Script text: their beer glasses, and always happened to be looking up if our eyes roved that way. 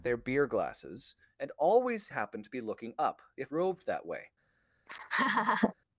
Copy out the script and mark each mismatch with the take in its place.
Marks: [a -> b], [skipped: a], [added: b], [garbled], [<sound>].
their beer glasses, and always happened to be looking up if [skipped: our eyes] roved that way. [laugh]